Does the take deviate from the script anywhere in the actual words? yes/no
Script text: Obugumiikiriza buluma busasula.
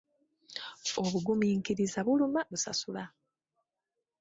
no